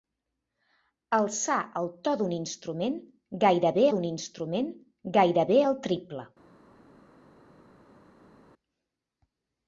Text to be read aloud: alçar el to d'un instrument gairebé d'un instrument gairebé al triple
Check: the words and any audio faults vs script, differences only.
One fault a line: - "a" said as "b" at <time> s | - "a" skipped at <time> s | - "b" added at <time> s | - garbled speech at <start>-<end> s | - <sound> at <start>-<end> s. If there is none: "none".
none